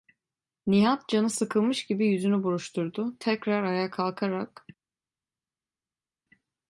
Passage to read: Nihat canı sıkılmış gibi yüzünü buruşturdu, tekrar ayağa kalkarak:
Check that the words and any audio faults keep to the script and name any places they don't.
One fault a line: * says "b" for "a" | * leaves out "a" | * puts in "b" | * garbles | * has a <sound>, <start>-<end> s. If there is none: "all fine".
all fine